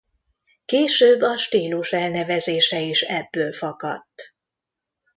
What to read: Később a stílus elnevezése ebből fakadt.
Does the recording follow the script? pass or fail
fail